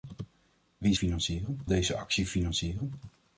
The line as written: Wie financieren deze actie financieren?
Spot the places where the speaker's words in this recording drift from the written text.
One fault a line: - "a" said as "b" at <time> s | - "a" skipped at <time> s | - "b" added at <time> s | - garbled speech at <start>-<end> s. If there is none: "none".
none